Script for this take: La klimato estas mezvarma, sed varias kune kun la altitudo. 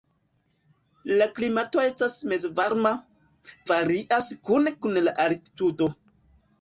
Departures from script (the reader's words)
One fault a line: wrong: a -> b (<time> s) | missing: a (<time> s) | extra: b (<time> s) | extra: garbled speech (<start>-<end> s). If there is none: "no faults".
missing: sed (2.9 s)